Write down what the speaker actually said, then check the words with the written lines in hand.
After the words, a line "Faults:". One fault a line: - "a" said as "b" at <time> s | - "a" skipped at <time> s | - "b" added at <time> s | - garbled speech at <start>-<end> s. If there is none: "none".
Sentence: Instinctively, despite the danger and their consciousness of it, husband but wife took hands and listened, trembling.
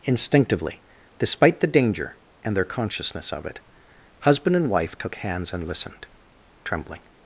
Instinctively, despite the danger and their consciousness of it, husband and wife took hands and listened, trembling.
Faults:
- "but" said as "and" at 4.5 s